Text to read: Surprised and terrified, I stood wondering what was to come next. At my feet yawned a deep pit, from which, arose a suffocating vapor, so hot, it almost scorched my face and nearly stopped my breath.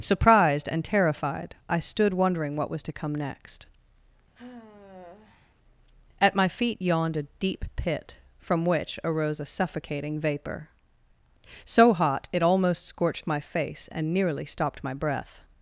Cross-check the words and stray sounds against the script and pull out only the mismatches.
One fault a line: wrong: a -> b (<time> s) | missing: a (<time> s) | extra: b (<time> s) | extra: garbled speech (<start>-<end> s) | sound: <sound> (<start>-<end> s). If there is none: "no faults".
sound: sigh (4.3-5.5 s)